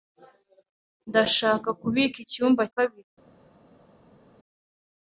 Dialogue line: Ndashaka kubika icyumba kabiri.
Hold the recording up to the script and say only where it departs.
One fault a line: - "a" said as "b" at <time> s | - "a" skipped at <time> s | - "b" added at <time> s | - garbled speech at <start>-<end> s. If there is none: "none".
none